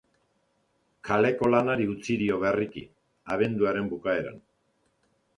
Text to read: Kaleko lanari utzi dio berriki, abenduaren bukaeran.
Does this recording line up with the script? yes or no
yes